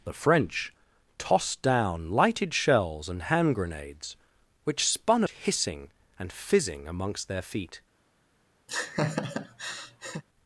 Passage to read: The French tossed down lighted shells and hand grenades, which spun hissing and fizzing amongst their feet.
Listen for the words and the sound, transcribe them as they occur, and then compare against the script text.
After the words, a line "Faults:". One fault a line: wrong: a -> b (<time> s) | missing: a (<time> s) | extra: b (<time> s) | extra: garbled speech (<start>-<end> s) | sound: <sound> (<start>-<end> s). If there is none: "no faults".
The French tossed down lighted shells and hand grenades, which spun hissing and fizzing amongst their feet.
Faults:
sound: laugh (8.7-10.2 s)